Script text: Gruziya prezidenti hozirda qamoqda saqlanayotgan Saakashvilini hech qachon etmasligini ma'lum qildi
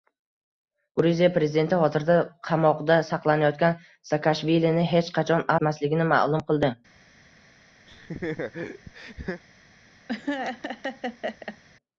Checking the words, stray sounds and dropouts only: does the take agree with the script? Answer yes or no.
no